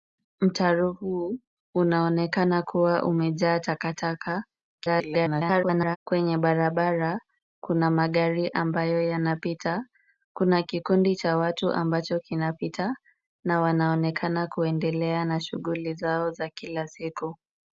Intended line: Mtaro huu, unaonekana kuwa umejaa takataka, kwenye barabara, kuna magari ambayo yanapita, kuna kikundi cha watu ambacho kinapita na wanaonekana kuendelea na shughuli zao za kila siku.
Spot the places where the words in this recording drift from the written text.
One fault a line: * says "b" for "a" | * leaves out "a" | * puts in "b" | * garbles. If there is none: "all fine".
* garbles